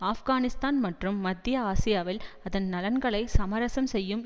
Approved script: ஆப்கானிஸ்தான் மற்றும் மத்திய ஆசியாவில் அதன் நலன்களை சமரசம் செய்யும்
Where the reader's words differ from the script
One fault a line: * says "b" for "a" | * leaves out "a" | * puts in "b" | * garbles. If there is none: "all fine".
all fine